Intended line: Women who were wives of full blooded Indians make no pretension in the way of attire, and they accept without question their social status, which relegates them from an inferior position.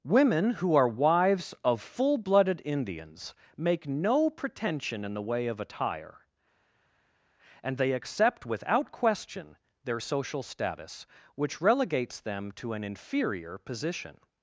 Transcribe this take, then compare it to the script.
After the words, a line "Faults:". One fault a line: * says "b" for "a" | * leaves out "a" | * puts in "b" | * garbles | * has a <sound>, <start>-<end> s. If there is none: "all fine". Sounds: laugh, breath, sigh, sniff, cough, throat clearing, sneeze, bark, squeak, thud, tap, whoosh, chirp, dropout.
Women who are wives of full blooded Indians make no pretension in the way of attire, and they accept without question their social status, which relegates them to an inferior position.
Faults:
* says "are" for "were"
* says "to" for "from"